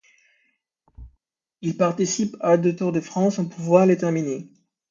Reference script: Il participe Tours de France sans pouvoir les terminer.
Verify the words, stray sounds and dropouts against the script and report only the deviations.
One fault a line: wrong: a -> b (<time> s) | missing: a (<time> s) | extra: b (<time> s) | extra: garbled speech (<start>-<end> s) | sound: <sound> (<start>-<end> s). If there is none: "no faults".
sound: thud (0.9-1.2 s)
extra: à deux (2.4 s)